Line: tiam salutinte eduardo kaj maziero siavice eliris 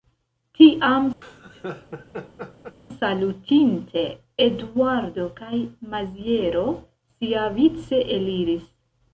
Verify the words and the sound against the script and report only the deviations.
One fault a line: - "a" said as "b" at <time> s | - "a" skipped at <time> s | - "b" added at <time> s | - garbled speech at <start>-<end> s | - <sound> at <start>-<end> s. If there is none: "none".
- laugh at 1.2-2.8 s